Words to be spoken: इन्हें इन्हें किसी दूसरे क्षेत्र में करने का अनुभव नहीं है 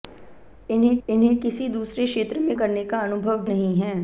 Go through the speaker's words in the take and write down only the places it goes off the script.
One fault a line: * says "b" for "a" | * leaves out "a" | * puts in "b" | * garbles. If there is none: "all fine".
all fine